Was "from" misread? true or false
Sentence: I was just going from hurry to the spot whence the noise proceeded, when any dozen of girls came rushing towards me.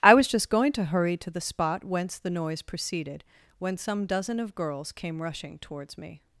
true